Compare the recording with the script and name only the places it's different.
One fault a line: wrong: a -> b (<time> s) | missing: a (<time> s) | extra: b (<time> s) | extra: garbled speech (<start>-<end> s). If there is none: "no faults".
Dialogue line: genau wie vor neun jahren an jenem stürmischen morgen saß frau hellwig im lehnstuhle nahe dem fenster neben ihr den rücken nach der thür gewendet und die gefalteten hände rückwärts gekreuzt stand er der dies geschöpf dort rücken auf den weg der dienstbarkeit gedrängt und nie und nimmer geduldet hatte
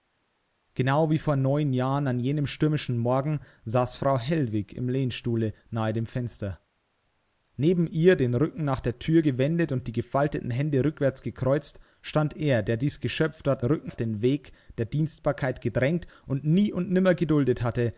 no faults